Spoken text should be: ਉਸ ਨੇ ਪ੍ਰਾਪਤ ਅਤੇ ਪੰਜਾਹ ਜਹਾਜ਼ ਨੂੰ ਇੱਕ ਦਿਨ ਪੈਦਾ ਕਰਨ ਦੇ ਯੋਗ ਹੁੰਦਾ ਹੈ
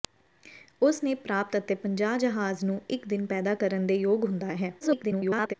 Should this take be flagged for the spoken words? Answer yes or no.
yes